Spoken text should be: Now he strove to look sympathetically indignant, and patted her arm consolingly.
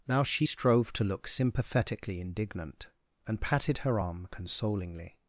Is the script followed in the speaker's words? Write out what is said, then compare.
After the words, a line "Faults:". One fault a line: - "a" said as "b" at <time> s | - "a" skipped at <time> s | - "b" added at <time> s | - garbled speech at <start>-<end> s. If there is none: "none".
Now she strove to look sympathetically indignant, and patted her arm consolingly.
Faults:
- "he" said as "she" at 0.2 s